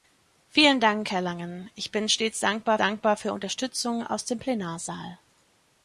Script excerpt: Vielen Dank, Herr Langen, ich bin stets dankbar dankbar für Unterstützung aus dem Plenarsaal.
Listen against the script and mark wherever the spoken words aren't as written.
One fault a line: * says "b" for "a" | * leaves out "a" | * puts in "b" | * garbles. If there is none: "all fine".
all fine